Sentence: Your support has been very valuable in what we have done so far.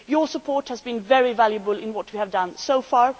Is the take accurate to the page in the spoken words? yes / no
yes